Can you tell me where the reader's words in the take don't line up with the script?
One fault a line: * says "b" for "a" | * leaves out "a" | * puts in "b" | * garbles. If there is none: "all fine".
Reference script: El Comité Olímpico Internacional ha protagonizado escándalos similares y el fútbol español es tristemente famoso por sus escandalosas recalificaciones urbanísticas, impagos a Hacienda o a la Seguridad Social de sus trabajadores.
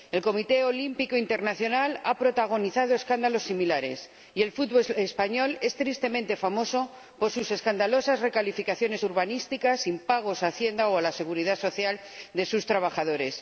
all fine